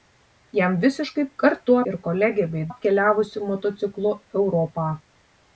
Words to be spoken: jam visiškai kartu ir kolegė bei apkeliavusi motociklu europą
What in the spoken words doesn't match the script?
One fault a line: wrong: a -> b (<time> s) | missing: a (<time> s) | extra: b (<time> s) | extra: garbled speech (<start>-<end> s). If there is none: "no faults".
no faults